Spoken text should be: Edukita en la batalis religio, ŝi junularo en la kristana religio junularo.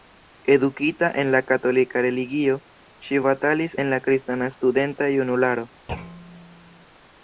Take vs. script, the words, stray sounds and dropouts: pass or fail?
fail